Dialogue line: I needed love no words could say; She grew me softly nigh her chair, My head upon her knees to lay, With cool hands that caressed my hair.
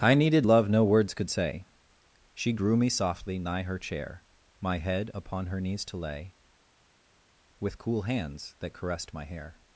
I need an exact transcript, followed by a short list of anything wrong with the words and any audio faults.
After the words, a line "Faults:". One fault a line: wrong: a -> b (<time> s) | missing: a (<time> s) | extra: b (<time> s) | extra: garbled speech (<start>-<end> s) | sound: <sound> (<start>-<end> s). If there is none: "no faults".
I needed love no words could say; She grew me softly nigh her chair, My head upon her knees to lay, With cool hands that caressed my hair.
Faults:
no faults